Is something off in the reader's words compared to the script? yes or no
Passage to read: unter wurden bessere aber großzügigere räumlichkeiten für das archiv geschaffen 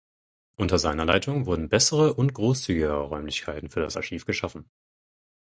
yes